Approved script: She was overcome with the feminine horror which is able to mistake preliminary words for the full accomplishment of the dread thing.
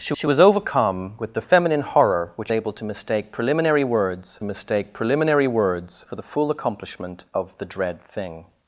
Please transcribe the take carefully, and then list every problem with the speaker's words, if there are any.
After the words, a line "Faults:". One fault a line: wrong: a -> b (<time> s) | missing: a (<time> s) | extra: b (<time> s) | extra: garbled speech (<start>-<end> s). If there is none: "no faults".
She she was overcome with the feminine horror which able to mistake preliminary words mistake preliminary words for the full accomplishment of the dread thing.
Faults:
extra: she (0.1 s)
missing: is (2.5 s)
extra: mistake preliminary words (4.4 s)